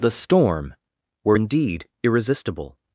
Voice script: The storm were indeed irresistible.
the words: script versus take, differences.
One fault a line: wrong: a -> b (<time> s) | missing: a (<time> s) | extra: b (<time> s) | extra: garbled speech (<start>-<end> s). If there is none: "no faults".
no faults